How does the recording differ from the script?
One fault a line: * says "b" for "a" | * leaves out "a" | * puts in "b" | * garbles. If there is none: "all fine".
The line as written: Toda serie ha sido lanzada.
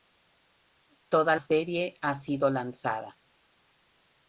all fine